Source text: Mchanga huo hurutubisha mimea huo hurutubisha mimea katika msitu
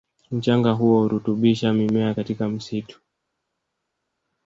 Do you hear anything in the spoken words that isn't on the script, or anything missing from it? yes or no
yes